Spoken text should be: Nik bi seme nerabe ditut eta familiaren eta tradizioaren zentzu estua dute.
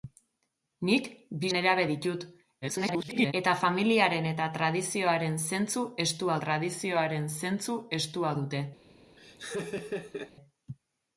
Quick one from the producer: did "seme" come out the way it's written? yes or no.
no